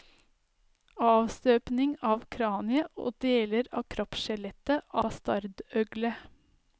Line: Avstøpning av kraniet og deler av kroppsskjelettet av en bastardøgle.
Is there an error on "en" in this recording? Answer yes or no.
yes